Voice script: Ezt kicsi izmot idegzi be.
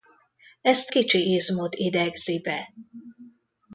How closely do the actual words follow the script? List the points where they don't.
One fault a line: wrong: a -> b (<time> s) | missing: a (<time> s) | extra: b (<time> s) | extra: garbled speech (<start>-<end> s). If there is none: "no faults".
no faults